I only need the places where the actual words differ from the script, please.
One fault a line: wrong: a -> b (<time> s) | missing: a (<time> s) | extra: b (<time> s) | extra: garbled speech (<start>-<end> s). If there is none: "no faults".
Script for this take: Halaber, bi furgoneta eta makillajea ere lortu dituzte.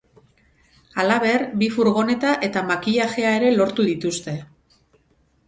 no faults